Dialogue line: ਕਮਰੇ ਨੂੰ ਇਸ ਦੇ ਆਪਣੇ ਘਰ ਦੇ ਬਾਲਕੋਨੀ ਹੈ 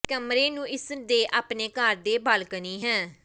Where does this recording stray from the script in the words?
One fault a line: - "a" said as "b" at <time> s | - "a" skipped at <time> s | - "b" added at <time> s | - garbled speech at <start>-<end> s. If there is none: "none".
none